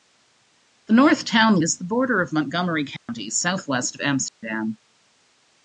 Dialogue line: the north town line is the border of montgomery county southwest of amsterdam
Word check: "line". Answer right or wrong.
wrong